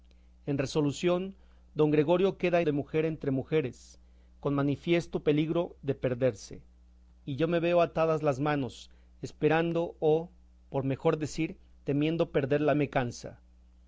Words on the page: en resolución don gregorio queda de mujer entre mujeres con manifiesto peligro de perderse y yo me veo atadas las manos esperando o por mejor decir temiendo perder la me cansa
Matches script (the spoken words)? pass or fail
pass